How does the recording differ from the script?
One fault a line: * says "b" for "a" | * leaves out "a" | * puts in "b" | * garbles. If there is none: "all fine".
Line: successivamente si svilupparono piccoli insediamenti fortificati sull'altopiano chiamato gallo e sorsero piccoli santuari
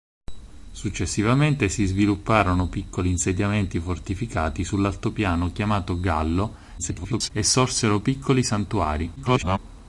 * garbles
* garbles